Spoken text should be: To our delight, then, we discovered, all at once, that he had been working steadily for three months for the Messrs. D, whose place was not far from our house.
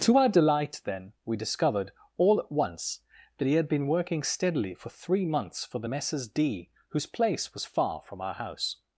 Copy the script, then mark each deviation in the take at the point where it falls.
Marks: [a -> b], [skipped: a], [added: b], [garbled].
To our delight, then, we discovered, all at once, that he had been working steadily for three months for the Messrs. D, whose place was [skipped: not] far from our house.